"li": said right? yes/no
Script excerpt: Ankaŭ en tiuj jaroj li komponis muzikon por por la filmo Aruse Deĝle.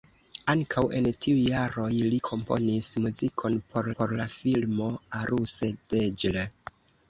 yes